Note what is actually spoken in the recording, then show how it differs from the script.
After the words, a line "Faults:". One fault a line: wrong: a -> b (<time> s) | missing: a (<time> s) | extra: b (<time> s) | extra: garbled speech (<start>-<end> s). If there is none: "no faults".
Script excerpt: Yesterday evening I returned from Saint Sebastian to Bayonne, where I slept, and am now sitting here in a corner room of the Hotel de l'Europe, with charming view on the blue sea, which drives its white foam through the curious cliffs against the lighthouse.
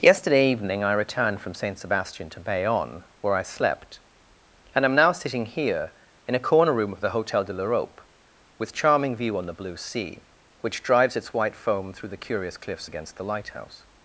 Yesterday evening I returned from Saint Sebastian to Bayonne, where I slept, and am now sitting here in a corner room of the Hotel de l'Europe, with charming view on the blue sea, which drives its white foam through the curious cliffs against the lighthouse.
Faults:
no faults